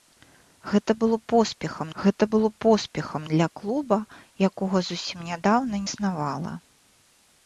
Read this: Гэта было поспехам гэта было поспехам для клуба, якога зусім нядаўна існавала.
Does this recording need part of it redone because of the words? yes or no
no